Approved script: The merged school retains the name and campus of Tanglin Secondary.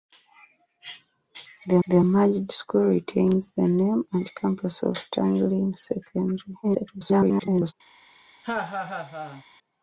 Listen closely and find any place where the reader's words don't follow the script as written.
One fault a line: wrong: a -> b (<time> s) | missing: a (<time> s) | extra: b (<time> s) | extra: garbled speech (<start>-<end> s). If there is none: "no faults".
extra: the (1.9 s)
extra: garbled speech (6.6-7.7 s)